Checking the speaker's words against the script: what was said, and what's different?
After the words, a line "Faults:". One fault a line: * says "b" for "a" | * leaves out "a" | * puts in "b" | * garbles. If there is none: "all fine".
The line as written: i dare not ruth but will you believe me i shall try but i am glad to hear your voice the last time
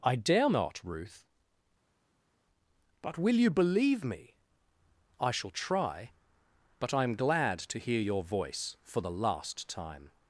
i dare not ruth but will you believe me i shall try but i am glad to hear your voice for the last time
Faults:
* puts in "for"